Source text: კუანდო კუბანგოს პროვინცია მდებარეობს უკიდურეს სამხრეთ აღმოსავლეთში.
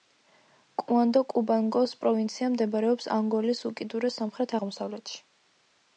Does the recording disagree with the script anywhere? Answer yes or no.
yes